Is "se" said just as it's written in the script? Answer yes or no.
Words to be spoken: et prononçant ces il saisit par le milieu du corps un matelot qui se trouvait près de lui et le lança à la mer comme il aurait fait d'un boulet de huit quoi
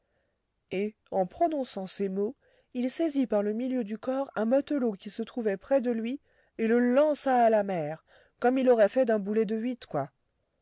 yes